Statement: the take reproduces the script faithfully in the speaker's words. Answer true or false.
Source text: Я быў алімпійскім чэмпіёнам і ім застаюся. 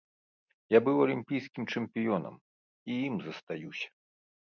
true